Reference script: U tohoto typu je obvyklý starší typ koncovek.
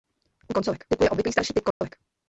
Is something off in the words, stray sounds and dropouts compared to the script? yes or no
yes